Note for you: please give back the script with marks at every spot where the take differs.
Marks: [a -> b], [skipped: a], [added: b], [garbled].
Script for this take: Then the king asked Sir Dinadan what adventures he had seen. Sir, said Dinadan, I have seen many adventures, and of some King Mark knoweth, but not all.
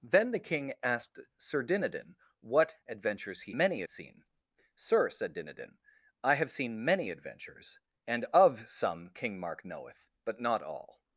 Then the king asked Sir Dinadan what adventures he [had -> many] seen. Sir, said Dinadan, I have seen many adventures, and of some King Mark knoweth, but not all.